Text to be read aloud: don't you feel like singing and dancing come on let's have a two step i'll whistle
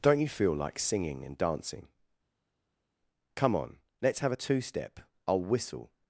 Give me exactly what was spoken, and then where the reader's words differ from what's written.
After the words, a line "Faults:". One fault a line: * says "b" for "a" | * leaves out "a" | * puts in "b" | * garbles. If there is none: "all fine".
don't you feel like singing and dancing come on let's have a two step i'll whistle
Faults:
all fine